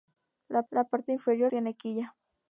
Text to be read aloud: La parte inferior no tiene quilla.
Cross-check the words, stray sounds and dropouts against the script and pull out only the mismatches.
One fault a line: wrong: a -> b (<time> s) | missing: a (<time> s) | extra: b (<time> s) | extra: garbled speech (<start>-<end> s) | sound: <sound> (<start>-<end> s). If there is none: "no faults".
extra: la (0.7 s)
missing: no (1.5 s)